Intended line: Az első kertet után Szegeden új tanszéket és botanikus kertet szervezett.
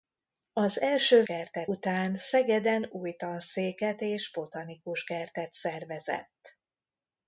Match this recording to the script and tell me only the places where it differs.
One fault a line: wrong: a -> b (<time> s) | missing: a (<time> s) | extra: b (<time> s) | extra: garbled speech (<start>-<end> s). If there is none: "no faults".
no faults